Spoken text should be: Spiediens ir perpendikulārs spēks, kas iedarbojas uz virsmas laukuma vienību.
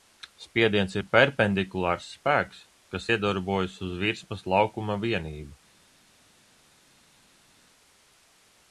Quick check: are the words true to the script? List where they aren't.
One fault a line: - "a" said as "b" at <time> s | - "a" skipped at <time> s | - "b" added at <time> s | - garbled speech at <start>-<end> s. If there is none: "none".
none